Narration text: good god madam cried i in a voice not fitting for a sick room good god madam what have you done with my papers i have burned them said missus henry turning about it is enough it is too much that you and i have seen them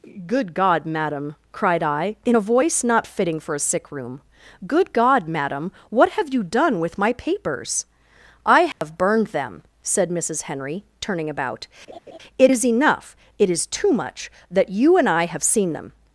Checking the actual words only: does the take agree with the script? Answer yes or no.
yes